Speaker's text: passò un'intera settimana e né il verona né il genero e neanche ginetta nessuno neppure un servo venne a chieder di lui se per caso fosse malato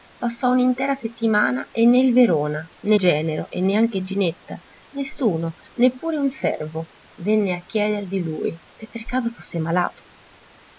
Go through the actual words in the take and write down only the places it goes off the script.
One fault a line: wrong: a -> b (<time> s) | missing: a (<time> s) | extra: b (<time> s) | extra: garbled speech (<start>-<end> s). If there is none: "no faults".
missing: il (3.0 s)